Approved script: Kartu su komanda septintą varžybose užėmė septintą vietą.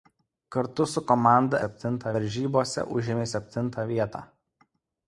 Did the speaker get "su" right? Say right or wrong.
right